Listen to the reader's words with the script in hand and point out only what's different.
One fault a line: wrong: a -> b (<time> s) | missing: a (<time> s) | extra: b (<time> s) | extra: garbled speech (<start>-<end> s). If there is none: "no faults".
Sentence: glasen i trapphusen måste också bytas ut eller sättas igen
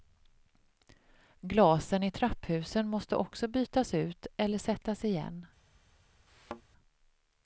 no faults